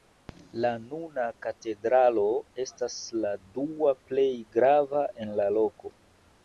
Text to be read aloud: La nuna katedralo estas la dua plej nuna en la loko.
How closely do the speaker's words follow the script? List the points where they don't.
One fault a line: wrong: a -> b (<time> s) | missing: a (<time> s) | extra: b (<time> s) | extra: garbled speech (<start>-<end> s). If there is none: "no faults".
wrong: nuna -> grava (4.6 s)